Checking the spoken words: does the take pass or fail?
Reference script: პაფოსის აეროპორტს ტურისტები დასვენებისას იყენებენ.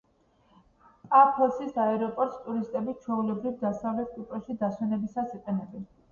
fail